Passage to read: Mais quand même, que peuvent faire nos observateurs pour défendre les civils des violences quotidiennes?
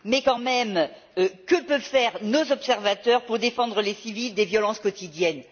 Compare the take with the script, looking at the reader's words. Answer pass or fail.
pass